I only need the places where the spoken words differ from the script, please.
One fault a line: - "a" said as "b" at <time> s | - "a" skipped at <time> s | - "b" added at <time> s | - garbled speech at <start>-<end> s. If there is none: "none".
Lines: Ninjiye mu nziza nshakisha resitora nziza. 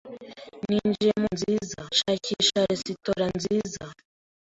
none